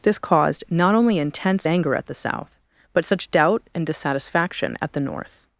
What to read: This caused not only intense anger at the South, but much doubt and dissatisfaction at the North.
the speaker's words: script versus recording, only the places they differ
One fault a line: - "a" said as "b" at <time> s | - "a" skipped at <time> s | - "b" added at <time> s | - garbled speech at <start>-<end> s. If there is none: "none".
- "much" said as "such" at 3.0 s